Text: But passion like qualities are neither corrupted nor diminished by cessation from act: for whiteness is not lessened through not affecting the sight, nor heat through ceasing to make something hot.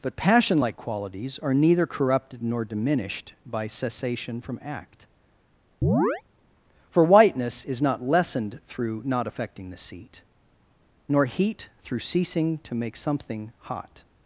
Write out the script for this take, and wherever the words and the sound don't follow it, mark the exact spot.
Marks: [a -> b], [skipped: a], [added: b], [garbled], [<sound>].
But passion like qualities are neither corrupted nor diminished by cessation from act: [chirp] for whiteness is not lessened through not affecting the [sight, -> seat] nor heat through ceasing to make something hot.